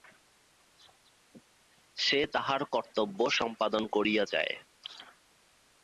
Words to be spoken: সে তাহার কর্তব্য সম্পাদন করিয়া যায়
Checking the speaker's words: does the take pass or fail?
pass